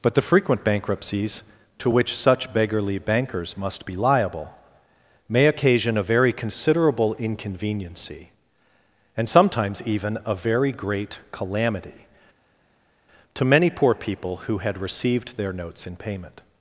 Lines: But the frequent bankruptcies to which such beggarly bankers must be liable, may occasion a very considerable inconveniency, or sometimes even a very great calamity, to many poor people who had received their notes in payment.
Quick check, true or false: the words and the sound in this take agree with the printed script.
false